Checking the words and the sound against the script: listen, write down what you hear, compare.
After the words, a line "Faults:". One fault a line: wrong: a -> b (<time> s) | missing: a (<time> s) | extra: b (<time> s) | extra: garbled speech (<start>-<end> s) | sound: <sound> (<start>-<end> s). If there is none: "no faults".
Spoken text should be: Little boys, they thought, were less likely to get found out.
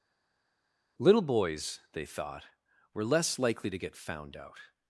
Little boys, they thought, were less likely to get found out.
Faults:
no faults